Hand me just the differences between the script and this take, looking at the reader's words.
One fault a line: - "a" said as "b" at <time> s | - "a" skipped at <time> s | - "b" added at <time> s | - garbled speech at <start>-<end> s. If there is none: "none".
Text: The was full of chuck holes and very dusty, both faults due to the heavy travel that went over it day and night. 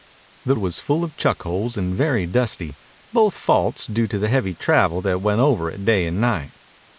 none